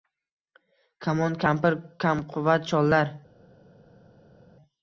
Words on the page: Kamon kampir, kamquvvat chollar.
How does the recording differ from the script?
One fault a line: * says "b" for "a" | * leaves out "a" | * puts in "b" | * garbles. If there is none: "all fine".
all fine